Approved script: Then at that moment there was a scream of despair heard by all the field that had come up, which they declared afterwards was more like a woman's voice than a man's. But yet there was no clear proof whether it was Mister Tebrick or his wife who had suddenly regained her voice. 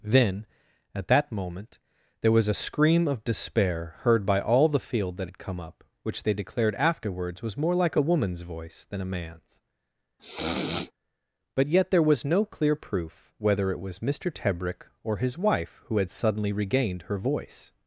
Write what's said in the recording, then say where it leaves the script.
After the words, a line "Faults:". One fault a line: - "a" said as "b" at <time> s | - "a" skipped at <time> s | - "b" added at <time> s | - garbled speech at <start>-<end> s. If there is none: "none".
Then at that moment there was a scream of despair heard by all the field that had come up, which they declared afterwards was more like a woman's voice than a man's. But yet there was no clear proof whether it was Mister Tebrick or his wife who had suddenly regained her voice.
Faults:
none